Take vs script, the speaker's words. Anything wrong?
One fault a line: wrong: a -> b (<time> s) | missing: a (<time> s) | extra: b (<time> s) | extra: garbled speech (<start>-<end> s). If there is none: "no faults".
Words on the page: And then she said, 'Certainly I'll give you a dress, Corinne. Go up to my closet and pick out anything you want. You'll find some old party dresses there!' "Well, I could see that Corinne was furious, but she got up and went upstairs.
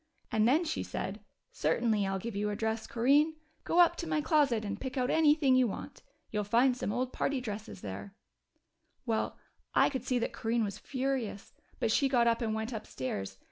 no faults